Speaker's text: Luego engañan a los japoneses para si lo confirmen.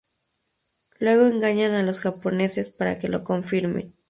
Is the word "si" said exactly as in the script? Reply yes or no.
no